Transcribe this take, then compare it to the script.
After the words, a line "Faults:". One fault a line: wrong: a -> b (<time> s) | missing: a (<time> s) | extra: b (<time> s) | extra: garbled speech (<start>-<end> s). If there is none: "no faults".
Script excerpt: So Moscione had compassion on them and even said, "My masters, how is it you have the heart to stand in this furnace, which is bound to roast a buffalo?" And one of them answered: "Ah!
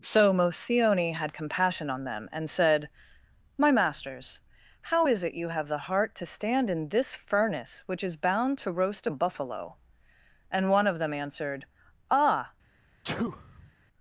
So Moscione had compassion on them and said, "My masters, how is it you have the heart to stand in this furnace, which is bound to roast a buffalo?" And one of them answered: "Ah!
Faults:
missing: even (2.5 s)